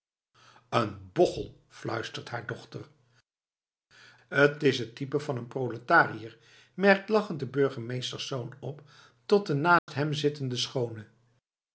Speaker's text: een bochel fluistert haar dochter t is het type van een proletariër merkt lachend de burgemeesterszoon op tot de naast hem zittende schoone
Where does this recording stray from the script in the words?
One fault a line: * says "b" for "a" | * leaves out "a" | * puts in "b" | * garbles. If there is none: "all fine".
all fine